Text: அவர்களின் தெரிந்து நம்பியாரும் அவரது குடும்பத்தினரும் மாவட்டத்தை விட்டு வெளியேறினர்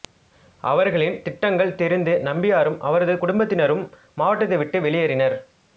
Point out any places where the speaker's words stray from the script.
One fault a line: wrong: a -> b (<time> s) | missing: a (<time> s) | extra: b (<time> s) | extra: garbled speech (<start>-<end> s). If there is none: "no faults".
extra: திட்டங்கள் (1.2 s)